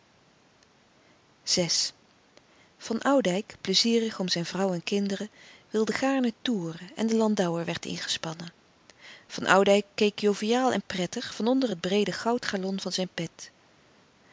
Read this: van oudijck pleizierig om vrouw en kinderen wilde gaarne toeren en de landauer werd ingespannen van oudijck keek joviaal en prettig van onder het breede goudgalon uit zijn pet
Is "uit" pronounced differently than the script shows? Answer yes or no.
yes